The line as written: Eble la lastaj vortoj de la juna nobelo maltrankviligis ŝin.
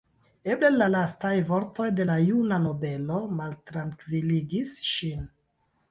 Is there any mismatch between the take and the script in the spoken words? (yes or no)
no